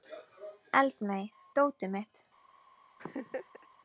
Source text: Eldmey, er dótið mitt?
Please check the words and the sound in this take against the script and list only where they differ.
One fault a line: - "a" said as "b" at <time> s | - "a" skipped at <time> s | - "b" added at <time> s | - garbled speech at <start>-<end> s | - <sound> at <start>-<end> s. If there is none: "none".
- laugh at 3.0-3.7 s